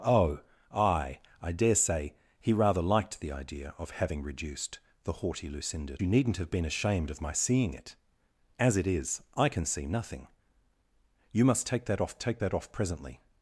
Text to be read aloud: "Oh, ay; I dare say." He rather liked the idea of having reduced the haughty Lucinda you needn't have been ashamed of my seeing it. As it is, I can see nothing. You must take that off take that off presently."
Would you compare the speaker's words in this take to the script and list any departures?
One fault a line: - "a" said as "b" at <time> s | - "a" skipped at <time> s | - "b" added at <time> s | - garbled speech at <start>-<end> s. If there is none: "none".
none